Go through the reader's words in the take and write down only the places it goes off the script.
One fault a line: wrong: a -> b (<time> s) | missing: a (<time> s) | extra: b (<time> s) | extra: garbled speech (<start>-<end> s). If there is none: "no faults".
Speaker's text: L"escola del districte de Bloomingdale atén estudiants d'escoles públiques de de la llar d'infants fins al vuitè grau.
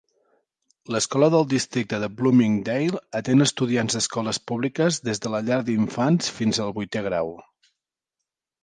wrong: de -> des (5.1 s)